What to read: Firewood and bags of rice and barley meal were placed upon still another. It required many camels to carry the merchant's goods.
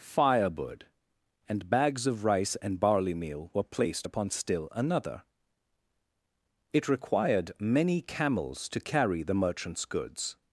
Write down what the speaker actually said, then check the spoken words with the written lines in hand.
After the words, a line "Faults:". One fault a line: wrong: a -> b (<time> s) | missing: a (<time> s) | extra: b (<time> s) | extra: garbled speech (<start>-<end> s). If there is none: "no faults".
Firewood and bags of rice and barley meal were placed upon still another. It required many camels to carry the merchant's goods.
Faults:
no faults